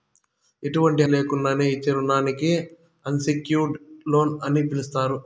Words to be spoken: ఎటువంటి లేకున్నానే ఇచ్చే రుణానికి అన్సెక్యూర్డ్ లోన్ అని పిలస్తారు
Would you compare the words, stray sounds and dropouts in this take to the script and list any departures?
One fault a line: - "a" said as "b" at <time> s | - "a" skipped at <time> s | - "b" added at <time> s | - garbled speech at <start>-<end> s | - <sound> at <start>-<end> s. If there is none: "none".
none